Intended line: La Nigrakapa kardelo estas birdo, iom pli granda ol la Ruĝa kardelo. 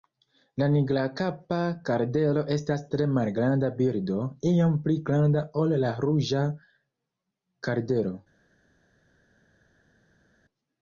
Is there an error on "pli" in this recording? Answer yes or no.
no